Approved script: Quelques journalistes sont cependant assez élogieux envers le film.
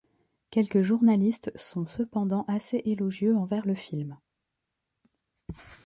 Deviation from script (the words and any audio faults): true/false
false